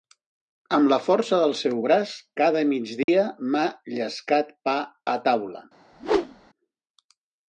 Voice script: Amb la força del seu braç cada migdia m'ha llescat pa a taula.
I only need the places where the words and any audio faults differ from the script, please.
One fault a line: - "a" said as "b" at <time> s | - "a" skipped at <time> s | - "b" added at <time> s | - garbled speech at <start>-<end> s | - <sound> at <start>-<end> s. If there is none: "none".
- dropout at 3.0-3.1 s
- whoosh at 5.9-6.5 s